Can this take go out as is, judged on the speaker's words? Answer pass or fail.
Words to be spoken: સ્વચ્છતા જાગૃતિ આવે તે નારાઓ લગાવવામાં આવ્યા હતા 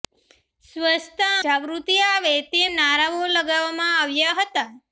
pass